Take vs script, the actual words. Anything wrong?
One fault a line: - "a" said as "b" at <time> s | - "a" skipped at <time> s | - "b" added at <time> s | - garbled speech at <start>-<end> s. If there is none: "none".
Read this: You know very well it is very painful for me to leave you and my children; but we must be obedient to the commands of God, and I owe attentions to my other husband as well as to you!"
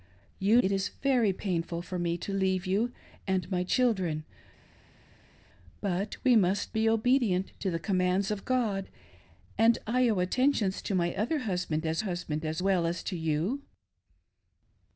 - "know very well" skipped at 0.6 s
- "husband as" added at 12.0 s